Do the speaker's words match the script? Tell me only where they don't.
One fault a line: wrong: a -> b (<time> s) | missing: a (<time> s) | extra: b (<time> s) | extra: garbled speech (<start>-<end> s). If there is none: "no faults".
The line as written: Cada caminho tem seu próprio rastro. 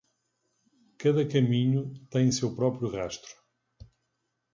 no faults